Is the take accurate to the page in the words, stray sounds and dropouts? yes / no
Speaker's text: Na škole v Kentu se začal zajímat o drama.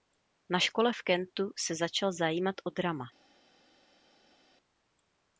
yes